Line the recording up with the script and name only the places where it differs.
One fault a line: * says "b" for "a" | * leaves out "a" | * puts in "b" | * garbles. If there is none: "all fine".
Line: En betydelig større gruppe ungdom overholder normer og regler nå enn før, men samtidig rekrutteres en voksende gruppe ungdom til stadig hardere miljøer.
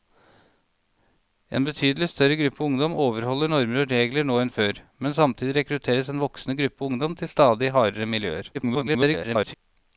* garbles